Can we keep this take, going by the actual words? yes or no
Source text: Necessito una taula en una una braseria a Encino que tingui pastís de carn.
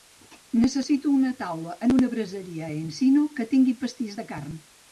no